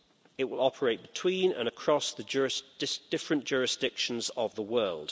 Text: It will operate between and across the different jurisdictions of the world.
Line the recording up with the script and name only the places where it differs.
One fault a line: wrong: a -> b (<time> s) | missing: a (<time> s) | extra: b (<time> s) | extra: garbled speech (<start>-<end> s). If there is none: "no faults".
no faults